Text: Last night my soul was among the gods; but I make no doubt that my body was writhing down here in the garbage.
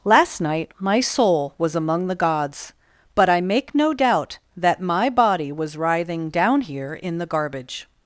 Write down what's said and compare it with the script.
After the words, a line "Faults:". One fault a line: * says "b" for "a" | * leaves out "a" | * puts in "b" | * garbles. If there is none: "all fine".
Last night my soul was among the gods; but I make no doubt that my body was writhing down here in the garbage.
Faults:
all fine